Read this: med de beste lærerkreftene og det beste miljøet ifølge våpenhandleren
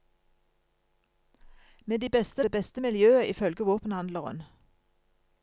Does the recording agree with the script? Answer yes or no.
no